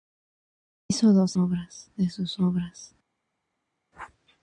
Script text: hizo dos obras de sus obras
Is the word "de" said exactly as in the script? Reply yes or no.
yes